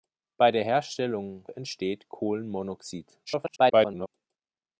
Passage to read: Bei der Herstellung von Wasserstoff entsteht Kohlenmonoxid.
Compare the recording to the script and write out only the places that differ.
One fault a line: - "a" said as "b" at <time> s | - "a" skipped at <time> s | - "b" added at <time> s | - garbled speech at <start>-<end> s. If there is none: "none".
- "von Wasserstoff" skipped at 1.5 s
- garbled speech at 3.3-4.1 s